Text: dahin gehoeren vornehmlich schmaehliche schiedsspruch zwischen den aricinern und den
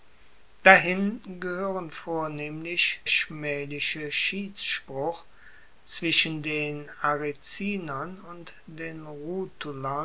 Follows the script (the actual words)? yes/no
yes